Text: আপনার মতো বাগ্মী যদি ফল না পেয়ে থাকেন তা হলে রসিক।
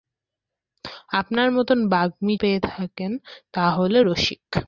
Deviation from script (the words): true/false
true